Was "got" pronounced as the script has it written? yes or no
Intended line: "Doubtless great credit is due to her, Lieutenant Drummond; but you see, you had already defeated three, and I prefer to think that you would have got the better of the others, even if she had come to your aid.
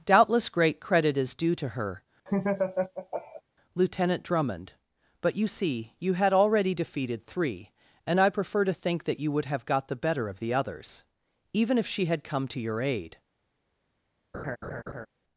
yes